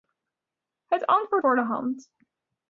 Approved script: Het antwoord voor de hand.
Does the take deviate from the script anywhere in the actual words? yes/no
no